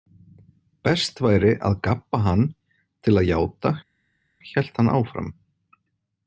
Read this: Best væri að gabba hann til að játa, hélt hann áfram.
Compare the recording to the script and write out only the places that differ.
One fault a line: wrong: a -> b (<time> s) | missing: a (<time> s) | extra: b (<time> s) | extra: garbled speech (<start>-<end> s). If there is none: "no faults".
no faults